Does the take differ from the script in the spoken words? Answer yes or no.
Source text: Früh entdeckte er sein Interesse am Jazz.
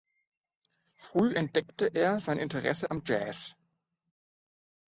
no